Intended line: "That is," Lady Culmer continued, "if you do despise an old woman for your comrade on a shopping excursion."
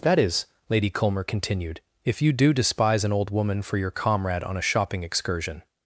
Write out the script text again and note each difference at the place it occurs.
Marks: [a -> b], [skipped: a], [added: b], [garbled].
"That is," Lady Culmer continued, "if you do despise an old woman for your comrade on a shopping excursion."